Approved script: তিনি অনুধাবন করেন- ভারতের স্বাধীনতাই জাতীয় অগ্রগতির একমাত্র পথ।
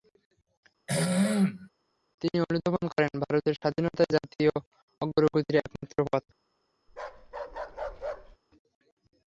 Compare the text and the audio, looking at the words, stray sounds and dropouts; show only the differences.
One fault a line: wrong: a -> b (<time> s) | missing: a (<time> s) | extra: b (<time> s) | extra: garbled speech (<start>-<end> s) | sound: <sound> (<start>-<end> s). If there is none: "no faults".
sound: throat clearing (0.9-1.7 s)
sound: bark (6.9-8.4 s)